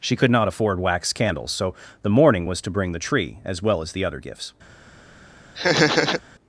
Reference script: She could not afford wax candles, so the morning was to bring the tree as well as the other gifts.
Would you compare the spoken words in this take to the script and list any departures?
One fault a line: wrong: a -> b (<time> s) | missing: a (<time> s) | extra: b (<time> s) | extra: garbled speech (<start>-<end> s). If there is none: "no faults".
no faults